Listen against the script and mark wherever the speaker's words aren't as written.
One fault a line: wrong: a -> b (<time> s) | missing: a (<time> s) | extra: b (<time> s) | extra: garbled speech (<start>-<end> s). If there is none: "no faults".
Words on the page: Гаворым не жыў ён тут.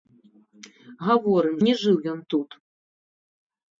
no faults